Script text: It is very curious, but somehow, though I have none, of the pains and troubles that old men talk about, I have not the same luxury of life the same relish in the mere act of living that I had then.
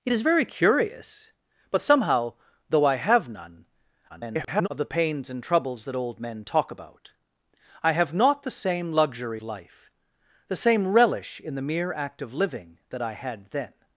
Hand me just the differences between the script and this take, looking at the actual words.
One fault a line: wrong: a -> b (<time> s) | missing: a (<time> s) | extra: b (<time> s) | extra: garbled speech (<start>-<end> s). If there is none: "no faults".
extra: garbled speech (4.1-4.7 s)
missing: of (9.4 s)